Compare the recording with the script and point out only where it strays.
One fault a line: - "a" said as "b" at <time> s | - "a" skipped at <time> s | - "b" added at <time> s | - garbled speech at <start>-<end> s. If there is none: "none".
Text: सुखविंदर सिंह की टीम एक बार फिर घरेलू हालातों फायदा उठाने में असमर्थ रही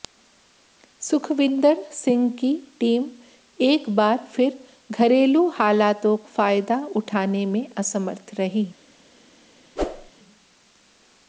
none